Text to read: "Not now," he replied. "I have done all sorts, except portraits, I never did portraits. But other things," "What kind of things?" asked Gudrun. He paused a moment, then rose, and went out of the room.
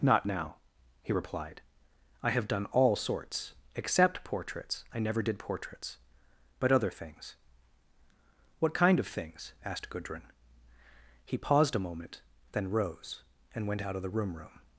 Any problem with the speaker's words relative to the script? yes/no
yes